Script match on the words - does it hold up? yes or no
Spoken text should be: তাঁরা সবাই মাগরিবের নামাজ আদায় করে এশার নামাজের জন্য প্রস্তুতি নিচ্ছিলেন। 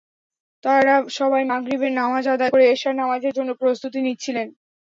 yes